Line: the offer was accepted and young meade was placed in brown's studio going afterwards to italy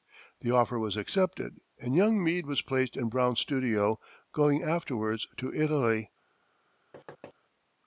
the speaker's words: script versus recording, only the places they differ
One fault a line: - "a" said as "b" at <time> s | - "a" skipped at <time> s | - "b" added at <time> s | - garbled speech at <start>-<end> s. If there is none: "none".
none